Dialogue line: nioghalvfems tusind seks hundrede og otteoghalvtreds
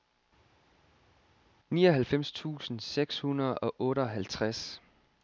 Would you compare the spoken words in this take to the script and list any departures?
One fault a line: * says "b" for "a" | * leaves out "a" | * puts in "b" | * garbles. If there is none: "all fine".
all fine